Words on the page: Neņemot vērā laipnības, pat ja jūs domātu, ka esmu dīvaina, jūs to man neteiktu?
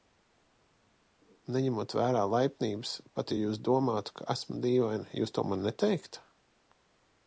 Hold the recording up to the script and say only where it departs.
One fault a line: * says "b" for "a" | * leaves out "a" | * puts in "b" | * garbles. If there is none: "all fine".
all fine